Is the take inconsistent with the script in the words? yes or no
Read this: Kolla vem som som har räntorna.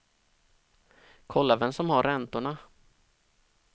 yes